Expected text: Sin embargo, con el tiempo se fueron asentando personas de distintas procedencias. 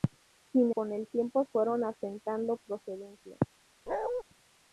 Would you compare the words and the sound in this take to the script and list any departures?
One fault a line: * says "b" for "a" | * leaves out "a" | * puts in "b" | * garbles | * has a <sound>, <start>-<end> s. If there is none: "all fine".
* leaves out "embargo"
* leaves out "se"
* leaves out "personas de distintas"
* has a bark, 3.9-4.2 s